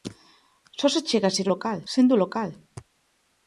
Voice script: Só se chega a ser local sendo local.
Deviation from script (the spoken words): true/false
false